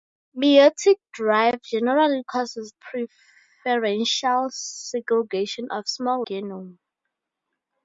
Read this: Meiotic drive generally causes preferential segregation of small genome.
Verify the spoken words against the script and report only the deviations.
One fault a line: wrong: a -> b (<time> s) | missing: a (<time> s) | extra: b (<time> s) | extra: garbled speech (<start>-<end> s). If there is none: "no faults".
no faults